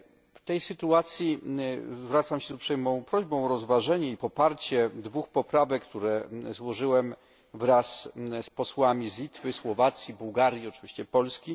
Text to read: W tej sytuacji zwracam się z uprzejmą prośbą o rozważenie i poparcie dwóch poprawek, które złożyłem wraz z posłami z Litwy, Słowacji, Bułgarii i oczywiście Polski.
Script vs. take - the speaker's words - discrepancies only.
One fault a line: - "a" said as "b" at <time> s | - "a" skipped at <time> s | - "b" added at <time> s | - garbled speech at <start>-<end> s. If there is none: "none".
none